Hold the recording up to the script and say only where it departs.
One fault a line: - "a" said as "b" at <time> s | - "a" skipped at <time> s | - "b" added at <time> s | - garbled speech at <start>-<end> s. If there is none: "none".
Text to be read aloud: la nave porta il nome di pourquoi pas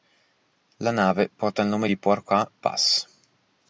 none